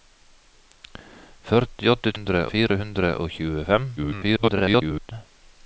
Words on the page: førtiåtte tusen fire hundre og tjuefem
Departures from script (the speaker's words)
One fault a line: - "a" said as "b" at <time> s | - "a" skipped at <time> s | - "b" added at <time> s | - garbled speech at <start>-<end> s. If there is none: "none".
- "tusen" said as "hundre" at 2.1 s
- garbled speech at 4.0-5.1 s